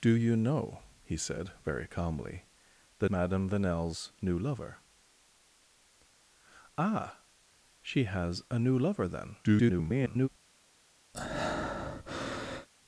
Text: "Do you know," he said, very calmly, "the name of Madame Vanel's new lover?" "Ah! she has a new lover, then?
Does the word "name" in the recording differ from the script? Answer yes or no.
yes